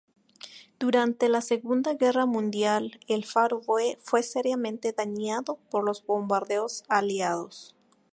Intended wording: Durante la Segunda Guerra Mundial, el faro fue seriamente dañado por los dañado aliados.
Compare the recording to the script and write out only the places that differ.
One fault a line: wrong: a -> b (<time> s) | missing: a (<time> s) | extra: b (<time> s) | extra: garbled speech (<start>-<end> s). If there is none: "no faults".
wrong: dañado -> bombardeos (6.0 s)